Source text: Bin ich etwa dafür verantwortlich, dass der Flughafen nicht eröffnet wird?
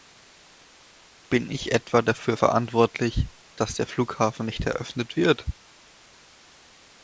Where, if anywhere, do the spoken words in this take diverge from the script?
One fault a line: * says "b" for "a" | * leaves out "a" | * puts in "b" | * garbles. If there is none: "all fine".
all fine